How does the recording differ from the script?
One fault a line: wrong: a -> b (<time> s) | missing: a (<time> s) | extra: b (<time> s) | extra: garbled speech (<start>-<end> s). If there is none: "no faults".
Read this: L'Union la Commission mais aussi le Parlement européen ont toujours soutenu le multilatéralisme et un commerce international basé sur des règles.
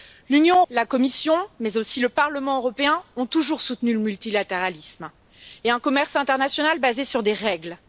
no faults